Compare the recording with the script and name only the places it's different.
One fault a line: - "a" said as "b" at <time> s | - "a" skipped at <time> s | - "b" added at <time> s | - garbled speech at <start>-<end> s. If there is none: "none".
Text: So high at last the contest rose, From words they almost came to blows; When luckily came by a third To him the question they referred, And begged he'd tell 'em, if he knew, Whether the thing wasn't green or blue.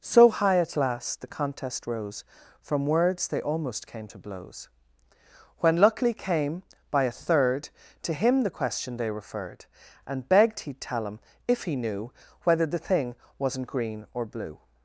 none